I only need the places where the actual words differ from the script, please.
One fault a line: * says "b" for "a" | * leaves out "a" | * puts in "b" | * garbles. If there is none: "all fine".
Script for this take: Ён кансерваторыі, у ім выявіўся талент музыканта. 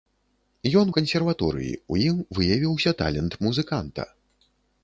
all fine